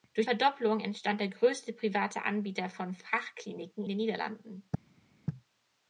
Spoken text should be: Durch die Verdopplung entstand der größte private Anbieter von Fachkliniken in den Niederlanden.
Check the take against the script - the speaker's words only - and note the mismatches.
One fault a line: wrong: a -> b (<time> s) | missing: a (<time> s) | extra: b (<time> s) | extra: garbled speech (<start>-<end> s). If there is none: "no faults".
missing: die (0.2 s)
missing: in (3.9 s)